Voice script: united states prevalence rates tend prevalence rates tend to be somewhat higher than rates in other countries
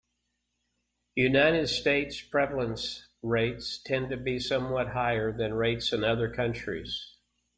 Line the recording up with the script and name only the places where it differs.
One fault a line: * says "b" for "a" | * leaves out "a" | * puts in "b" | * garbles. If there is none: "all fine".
* leaves out "prevalence rates tend"